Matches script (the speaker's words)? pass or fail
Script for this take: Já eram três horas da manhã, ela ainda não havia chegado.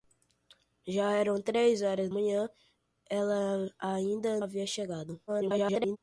fail